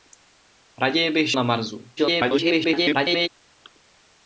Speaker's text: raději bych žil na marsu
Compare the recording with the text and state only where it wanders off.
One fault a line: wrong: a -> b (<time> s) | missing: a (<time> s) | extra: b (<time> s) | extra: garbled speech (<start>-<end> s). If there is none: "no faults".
missing: žil (1.3 s)
extra: garbled speech (2.0-3.3 s)